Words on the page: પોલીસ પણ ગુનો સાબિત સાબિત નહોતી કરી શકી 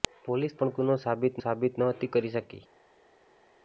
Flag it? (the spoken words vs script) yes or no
no